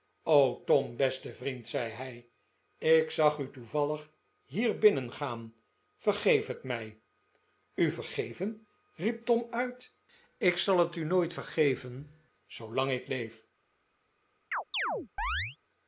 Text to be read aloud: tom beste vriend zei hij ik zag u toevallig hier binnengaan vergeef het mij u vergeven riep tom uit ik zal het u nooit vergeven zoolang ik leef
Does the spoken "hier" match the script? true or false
true